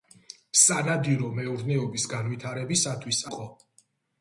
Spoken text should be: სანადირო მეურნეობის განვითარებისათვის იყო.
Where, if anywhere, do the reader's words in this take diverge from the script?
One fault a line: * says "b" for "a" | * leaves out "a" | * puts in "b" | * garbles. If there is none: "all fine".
all fine